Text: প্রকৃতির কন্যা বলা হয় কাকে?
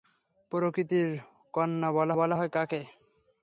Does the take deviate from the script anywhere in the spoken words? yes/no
yes